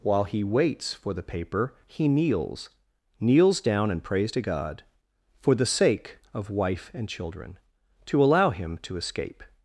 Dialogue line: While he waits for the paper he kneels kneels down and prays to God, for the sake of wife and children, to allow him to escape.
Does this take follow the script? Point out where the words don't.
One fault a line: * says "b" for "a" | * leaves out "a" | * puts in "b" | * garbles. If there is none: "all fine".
all fine